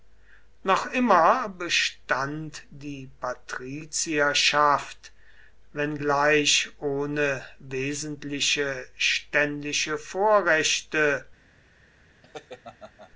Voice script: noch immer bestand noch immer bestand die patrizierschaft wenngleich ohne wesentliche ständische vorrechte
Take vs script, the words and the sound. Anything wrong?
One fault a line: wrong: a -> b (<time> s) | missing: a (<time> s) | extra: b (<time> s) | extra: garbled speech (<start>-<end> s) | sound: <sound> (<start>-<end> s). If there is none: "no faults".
missing: noch immer bestand (2.6 s)
sound: laugh (12.2-13.1 s)